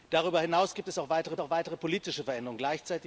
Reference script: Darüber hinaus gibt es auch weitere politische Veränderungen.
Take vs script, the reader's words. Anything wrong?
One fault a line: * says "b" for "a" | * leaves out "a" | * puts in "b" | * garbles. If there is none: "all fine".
* puts in "auch weitere"